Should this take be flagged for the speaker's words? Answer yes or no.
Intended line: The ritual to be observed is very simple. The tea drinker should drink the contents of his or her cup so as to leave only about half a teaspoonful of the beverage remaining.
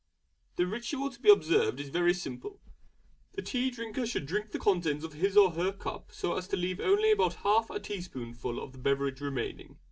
no